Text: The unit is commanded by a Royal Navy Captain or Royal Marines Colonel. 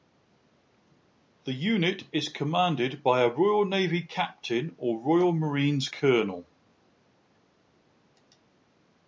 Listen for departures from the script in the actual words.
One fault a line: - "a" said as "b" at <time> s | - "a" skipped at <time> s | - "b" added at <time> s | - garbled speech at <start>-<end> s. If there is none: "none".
none